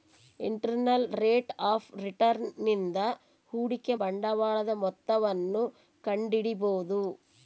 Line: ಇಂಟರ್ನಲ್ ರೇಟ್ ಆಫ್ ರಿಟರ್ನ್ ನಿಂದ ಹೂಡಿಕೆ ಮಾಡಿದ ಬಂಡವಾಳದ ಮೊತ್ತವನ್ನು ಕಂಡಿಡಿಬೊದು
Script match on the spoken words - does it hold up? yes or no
no